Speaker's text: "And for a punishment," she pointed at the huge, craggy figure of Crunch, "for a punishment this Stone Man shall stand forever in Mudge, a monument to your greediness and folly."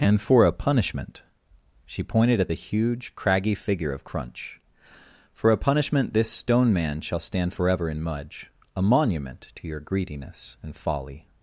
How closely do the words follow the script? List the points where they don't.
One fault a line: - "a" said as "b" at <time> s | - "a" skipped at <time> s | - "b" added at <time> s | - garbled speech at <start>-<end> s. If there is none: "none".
none